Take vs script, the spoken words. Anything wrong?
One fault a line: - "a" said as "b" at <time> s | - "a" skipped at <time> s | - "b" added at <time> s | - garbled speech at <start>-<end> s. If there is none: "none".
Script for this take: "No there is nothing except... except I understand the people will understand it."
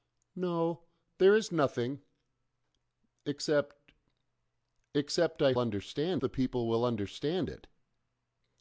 none